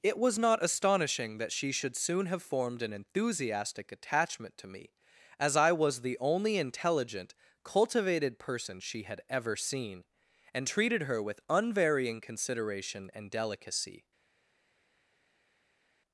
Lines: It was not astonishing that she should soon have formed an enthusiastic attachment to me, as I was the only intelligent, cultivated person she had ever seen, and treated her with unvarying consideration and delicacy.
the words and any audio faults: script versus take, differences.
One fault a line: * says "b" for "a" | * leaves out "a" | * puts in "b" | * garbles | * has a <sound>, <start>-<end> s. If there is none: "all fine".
all fine